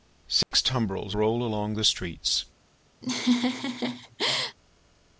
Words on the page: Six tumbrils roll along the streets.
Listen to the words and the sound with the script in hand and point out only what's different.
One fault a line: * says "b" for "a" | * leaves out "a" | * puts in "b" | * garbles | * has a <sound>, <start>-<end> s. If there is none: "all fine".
* has a dropout, 0.4-0.5 s
* has a laugh, 3.0-4.6 s